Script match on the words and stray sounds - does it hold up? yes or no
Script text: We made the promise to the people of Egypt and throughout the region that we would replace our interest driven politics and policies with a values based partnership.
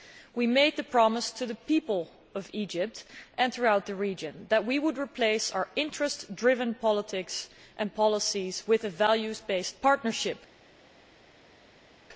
yes